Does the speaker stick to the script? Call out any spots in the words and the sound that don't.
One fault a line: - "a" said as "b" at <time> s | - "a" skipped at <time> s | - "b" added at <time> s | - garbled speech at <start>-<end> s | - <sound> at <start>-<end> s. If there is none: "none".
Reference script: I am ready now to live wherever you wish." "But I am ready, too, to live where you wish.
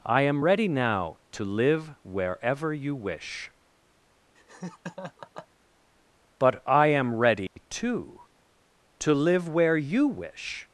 - laugh at 4.4-5.5 s
- dropout at 7.5-7.6 s